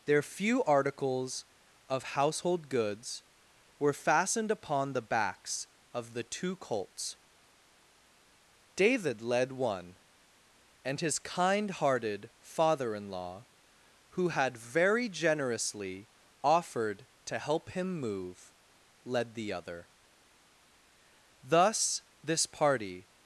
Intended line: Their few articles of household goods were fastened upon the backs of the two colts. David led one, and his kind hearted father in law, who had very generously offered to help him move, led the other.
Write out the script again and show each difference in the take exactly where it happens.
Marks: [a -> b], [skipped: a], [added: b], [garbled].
Their few articles of household goods were fastened upon the backs of the two colts. David led one, and his kind hearted father in law, who had very generously offered to help him move, led the other. [added: Thus this party]